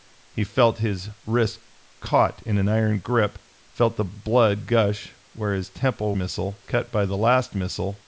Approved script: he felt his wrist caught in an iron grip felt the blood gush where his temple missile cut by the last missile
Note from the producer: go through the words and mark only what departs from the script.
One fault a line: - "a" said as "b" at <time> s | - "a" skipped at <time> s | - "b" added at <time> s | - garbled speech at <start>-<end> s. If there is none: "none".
none